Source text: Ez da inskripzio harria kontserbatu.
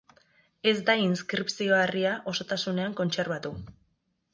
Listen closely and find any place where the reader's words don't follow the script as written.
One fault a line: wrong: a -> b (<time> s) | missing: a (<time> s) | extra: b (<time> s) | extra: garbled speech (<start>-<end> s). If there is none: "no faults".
extra: osotasunean (2.3 s)